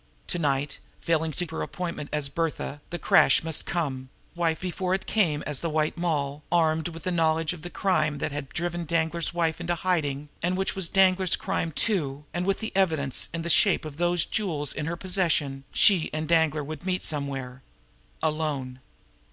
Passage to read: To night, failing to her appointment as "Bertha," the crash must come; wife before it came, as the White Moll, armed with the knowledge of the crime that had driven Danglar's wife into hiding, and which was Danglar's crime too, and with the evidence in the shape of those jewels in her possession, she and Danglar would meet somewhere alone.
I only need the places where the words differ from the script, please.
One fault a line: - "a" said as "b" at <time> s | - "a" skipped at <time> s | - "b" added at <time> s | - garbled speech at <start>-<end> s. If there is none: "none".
none